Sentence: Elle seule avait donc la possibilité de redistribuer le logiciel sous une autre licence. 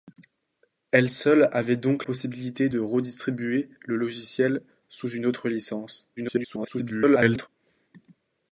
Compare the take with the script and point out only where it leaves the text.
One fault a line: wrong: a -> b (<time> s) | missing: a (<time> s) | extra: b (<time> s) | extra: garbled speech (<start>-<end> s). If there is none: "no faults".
missing: la (2.0 s)
extra: garbled speech (6.2-7.5 s)